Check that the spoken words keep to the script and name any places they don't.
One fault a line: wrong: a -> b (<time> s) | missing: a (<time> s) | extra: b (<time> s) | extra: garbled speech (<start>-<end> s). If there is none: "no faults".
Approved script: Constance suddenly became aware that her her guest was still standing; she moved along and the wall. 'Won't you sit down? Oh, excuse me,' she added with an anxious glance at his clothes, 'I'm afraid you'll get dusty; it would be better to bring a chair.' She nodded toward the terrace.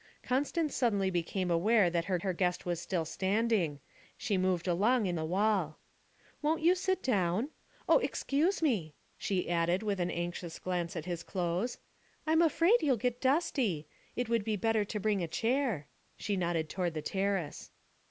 no faults